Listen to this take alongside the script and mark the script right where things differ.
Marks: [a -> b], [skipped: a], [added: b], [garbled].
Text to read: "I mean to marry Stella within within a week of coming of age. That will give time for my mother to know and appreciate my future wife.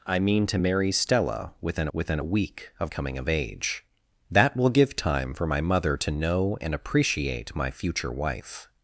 "I mean to marry Stella within within a week of coming of age. That will give time for my mother to know and appreciate my future wife.